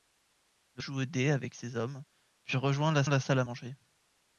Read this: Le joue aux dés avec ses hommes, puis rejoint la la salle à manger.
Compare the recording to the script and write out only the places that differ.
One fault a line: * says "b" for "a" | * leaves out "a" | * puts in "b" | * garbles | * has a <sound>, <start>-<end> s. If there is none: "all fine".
all fine